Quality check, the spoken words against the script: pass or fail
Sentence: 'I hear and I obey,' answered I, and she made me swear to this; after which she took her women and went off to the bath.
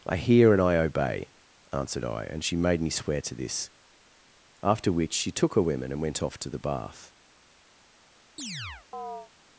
pass